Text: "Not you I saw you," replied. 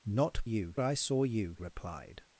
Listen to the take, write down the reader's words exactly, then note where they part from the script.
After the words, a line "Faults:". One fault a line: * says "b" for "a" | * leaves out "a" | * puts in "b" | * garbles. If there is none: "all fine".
"Not you I saw you," replied.
Faults:
all fine